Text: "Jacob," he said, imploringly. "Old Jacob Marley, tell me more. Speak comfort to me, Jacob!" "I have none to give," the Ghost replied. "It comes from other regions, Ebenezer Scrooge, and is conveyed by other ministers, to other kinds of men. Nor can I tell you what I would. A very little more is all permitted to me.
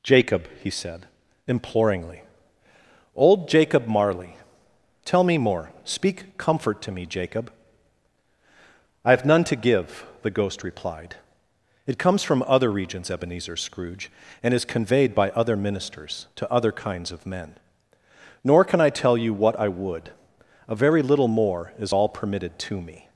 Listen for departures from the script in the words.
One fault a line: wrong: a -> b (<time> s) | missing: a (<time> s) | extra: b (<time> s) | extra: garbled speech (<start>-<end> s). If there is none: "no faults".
no faults